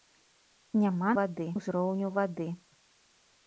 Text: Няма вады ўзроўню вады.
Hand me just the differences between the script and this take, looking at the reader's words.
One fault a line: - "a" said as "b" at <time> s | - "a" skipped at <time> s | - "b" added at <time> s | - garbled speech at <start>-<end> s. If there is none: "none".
none